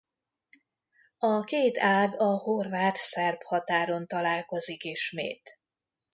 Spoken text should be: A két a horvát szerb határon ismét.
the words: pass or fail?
fail